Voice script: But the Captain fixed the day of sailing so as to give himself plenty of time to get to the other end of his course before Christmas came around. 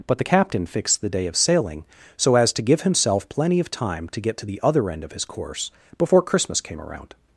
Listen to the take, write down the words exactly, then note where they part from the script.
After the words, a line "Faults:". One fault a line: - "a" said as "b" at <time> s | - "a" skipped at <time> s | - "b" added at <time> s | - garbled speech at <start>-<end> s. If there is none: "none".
But the Captain fixed the day of sailing so as to give himself plenty of time to get to the other end of his course before Christmas came around.
Faults:
none